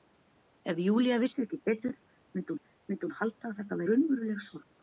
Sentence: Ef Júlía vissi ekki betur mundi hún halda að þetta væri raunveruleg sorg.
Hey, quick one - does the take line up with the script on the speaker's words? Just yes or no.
no